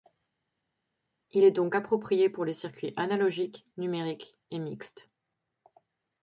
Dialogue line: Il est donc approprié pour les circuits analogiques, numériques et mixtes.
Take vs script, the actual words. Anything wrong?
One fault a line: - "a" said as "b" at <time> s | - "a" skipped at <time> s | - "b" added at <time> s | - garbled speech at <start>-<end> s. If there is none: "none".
none